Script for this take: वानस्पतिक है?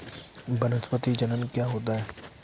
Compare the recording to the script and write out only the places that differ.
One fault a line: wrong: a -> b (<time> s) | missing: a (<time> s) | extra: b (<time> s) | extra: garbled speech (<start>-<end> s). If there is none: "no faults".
extra: जनन क्या होता (1.1 s)